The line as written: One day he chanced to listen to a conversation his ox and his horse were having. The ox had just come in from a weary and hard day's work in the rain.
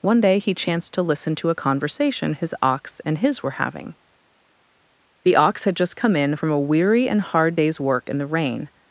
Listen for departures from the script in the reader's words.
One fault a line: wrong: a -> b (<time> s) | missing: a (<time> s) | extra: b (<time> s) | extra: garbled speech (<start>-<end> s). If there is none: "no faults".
missing: horse (3.4 s)